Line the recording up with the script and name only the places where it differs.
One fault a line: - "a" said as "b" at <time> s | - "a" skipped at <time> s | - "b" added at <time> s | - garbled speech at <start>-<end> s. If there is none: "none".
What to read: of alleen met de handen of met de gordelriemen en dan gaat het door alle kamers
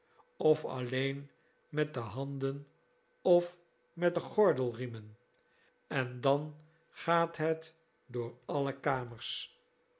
none